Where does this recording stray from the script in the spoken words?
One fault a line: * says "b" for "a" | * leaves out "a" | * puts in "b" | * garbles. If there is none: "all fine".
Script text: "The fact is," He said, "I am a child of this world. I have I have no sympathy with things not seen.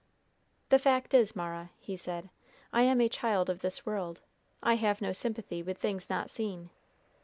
* puts in "Mara"
* leaves out "I have"